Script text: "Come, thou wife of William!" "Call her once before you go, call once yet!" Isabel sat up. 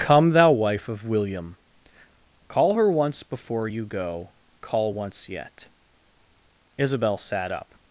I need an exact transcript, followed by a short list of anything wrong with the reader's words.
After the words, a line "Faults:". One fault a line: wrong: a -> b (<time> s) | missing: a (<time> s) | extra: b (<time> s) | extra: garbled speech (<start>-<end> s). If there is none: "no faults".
"Come, thou wife of William!" "Call her once before you go, call once yet!" Isabel sat up.
Faults:
no faults